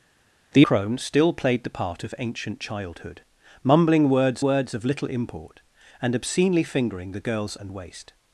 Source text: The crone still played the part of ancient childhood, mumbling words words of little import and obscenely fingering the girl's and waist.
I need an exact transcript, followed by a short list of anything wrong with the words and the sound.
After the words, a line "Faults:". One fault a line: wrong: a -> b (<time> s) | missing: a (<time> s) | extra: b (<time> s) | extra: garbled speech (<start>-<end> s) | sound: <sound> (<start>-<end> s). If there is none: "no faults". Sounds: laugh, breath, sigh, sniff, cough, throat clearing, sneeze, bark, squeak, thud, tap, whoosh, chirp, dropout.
The crone still played the part of ancient childhood, mumbling words words of little import and obscenely fingering the girl's and waist.
Faults:
no faults